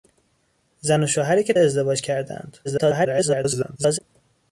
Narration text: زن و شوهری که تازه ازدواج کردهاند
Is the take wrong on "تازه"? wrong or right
wrong